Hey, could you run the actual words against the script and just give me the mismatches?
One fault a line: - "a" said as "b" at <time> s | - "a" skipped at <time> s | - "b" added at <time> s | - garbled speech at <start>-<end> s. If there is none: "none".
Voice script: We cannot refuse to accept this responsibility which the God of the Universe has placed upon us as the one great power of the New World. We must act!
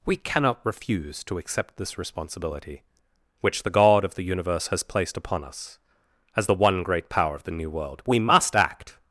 none